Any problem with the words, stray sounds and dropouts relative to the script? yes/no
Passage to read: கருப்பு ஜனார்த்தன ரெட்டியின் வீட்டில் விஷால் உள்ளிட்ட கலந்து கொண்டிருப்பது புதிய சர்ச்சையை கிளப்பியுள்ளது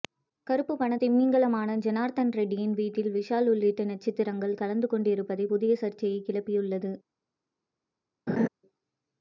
yes